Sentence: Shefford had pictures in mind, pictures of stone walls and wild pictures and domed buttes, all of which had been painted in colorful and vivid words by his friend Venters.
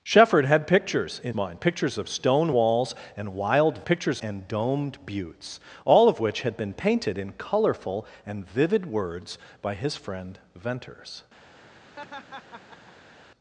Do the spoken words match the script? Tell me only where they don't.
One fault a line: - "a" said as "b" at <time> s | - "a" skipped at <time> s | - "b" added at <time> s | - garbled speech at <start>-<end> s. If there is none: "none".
none